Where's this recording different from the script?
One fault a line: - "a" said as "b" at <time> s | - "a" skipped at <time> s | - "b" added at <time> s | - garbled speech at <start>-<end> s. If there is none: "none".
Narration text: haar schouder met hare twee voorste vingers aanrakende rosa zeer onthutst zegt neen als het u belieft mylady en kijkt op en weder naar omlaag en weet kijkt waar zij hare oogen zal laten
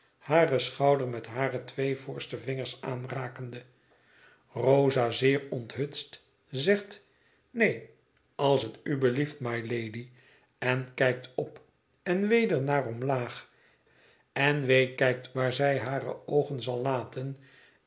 none